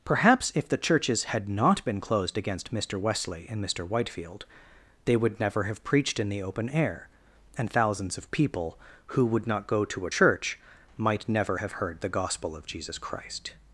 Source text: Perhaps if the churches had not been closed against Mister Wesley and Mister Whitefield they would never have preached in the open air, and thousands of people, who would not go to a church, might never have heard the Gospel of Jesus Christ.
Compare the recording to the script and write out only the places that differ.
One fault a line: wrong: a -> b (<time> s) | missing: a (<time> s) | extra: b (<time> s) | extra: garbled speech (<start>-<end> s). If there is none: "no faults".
no faults